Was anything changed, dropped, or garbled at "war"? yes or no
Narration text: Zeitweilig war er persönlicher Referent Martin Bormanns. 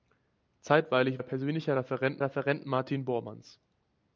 yes